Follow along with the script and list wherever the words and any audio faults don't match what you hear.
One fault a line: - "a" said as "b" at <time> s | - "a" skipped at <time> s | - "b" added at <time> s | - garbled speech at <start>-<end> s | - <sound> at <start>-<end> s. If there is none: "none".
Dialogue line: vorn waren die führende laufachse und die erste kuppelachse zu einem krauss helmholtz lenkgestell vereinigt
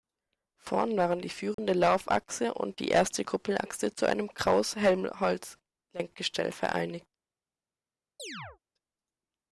- dropout at 1.5-1.6 s
- chirp at 8.2-8.6 s